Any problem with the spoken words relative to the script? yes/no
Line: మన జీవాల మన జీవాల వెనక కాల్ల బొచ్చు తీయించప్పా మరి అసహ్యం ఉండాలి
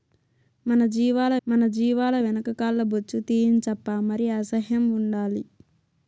no